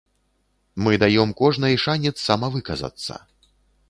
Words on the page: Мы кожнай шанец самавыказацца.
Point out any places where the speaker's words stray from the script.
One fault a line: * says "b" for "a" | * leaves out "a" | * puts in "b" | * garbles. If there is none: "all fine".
* puts in "даём"